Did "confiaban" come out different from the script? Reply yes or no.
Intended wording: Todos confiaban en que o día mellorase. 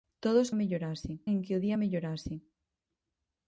yes